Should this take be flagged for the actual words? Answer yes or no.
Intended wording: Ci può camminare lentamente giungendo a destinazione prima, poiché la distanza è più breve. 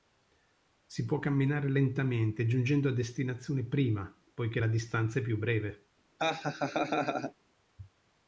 yes